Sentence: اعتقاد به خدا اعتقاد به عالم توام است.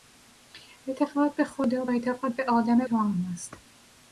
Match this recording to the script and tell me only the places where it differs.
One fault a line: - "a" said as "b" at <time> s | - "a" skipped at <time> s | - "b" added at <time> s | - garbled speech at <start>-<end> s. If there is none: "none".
none